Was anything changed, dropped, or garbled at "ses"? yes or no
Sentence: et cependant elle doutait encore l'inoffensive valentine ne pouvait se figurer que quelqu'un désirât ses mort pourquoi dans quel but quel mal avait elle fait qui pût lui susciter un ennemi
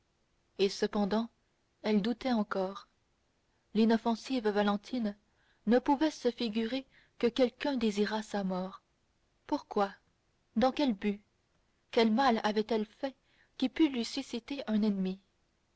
yes